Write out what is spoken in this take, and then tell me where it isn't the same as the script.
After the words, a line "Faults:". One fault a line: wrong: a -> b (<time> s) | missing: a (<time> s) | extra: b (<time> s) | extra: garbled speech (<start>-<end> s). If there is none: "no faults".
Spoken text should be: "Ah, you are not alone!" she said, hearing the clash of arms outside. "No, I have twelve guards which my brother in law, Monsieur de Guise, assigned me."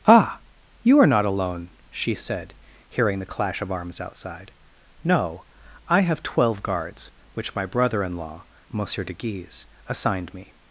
"Ah, you are not alone!" she said, hearing the clash of arms outside. "No, I have twelve guards which my brother in law, Monsieur de Guise, assigned me."
Faults:
no faults